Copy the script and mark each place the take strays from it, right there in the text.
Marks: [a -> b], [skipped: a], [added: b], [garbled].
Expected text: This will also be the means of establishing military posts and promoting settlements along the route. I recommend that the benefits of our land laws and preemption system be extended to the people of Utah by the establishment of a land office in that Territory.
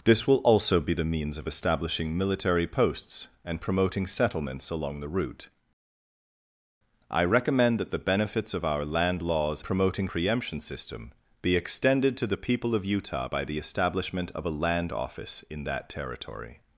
This will also be the means of establishing military posts and promoting settlements along the route. I recommend that the benefits of our land laws [and -> promoting] preemption system be extended to the people of Utah by the establishment of a land office in that Territory.